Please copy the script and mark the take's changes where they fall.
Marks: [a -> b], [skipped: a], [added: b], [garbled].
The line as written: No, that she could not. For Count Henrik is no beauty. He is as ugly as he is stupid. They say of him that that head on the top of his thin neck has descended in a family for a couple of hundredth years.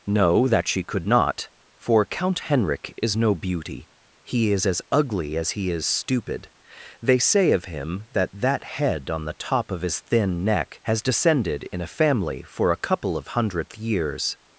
No, that she could not. For Count Henrik is no beauty. He is as ugly as he is stupid. They say of him that that head on the top of his thin neck has descended in a family for a couple of hundredth years.